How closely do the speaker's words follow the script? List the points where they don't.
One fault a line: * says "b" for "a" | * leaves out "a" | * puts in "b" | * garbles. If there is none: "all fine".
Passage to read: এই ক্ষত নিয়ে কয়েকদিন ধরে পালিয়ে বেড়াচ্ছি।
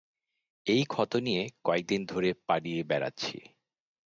all fine